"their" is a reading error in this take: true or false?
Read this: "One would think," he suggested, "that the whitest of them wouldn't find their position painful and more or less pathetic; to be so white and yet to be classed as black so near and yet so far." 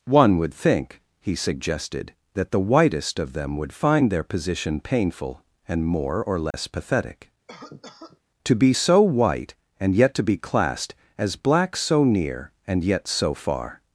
false